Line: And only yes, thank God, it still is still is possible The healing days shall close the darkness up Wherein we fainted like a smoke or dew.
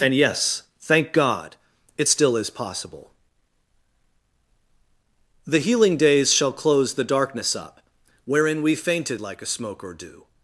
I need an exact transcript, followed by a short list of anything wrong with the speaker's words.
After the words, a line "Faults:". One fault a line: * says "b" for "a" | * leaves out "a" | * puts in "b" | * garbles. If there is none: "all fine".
And yes, thank God, it still is possible The healing days shall close the darkness up Wherein we fainted like a smoke or dew.
Faults:
* leaves out "only"
* leaves out "still is"